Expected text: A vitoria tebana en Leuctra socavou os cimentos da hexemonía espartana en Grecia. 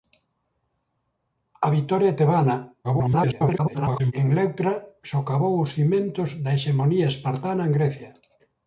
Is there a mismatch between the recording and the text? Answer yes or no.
yes